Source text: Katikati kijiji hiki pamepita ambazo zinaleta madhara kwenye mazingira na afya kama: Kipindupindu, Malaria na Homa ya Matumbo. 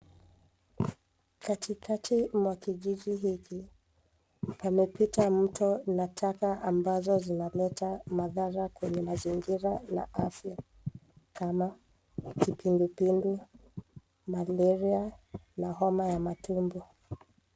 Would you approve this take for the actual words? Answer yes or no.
no